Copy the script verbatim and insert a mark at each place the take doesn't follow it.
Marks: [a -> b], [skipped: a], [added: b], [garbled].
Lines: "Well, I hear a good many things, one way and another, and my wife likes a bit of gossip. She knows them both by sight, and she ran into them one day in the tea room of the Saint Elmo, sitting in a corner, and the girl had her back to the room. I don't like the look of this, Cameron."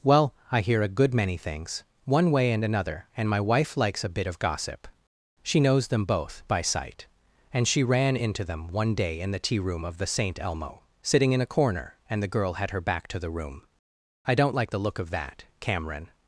"Well, I hear a good many things, one way and another, and my wife likes a bit of gossip. She knows them both by sight, and she ran into them one day in the tea room of the Saint Elmo, sitting in a corner, and the girl had her back to the room. I don't like the look of [this, -> that] Cameron."